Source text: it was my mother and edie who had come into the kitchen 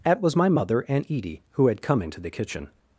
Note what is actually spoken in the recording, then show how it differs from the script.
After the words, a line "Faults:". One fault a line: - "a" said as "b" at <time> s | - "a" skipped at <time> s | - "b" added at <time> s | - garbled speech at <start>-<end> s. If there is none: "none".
at was my mother and edie who had come into the kitchen
Faults:
- "it" said as "at" at 0.0 s